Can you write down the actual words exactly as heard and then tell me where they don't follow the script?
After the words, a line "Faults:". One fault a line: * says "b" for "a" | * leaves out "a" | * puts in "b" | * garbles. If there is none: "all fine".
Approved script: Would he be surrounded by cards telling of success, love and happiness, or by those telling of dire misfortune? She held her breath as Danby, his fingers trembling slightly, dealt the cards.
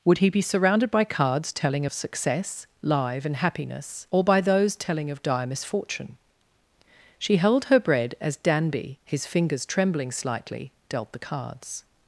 Would he be surrounded by cards telling of success, live and happiness, or by those telling of dire misfortune? She held her bread as Danby, his fingers trembling slightly, dealt the cards.
Faults:
* says "live" for "love"
* says "bread" for "breath"